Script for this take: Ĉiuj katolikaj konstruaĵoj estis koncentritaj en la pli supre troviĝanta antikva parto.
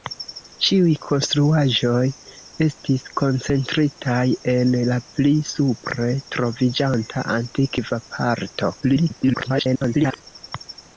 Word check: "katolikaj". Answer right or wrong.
wrong